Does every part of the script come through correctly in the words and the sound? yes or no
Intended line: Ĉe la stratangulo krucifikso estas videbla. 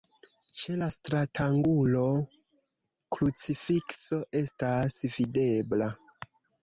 yes